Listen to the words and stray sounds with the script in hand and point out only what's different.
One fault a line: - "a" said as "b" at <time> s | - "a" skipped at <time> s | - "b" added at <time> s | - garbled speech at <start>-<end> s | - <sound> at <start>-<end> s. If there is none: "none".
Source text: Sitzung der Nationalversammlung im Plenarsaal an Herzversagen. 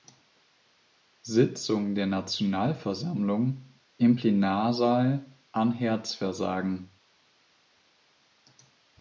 none